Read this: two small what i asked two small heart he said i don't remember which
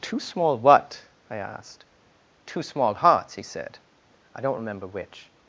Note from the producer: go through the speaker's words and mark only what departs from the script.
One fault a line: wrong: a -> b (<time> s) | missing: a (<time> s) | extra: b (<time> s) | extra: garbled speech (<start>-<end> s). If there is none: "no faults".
wrong: heart -> hearts (2.9 s)